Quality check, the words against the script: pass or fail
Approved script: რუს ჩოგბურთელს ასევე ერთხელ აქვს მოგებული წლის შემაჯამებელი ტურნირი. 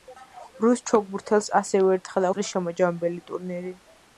fail